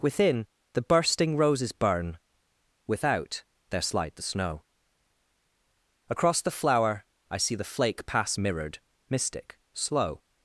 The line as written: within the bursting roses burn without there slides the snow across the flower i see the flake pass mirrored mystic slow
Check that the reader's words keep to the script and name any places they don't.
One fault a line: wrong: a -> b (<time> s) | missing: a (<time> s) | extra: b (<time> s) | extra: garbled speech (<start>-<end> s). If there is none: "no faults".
wrong: slides -> slide (3.8 s)